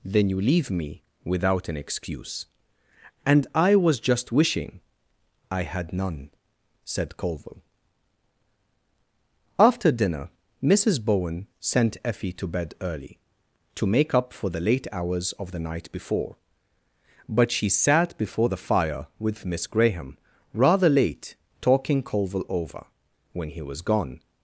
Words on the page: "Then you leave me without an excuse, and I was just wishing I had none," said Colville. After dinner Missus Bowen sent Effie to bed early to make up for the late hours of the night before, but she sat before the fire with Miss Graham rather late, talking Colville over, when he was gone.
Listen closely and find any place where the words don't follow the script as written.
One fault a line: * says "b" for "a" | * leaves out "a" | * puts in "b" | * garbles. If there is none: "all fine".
all fine